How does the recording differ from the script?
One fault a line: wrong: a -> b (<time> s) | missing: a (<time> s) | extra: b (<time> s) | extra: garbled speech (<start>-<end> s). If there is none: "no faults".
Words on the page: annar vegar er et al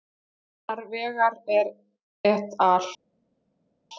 no faults